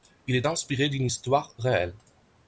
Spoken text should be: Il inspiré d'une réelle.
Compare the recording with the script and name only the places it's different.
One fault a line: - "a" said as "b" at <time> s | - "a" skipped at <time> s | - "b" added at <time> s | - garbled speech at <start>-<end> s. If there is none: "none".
- "est" added at 0.3 s
- "histoire" added at 1.1 s